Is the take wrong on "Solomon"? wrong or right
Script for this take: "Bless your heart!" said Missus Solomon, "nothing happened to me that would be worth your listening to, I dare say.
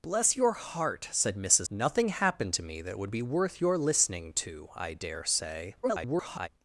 wrong